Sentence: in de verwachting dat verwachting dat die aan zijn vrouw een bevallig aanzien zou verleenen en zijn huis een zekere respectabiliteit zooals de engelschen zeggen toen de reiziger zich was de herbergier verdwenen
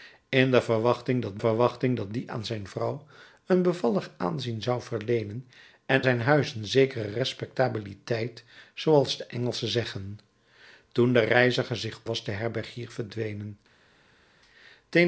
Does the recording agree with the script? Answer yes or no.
yes